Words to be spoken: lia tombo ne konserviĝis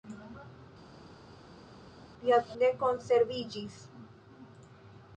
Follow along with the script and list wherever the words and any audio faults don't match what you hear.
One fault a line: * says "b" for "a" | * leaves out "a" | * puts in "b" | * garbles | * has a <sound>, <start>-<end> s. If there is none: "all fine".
* leaves out "tombo"